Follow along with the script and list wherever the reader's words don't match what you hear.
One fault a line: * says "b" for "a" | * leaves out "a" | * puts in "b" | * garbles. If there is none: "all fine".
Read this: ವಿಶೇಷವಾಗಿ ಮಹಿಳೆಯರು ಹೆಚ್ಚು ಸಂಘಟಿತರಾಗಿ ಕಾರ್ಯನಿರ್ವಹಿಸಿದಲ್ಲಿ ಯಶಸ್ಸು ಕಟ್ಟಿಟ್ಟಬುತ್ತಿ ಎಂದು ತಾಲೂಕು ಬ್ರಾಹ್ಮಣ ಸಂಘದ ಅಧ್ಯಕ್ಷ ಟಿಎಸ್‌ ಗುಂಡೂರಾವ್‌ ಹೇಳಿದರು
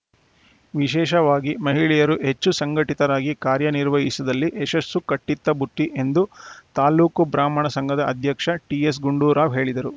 all fine